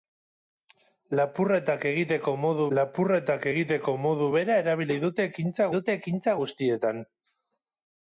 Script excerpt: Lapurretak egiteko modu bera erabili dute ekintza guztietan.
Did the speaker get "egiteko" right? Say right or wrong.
right